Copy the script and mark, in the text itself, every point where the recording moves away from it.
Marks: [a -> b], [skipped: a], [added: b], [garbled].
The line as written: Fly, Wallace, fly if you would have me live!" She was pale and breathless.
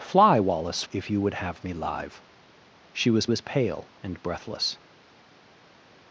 Fly, Wallace, [skipped: fly] if you would have me live!" She was [added: was] pale and breathless.